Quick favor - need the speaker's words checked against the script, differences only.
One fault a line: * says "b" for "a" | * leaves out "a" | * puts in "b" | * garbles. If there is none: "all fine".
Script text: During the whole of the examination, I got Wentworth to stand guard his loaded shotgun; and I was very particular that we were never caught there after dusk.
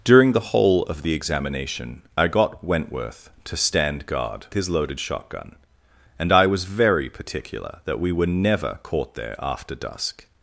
all fine